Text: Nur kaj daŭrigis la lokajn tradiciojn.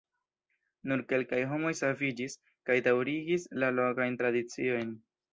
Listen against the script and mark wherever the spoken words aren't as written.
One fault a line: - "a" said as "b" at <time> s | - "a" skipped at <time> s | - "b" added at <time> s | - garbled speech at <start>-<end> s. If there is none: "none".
- "kelkaj homoj saviĝis" added at 1.1 s